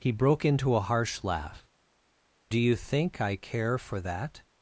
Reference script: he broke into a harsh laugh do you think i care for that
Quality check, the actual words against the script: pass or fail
pass